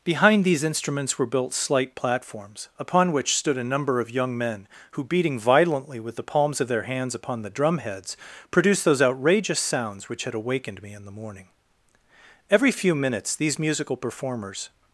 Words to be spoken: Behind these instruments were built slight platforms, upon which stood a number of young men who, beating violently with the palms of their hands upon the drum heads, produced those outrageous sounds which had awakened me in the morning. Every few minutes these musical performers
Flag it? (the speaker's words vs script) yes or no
no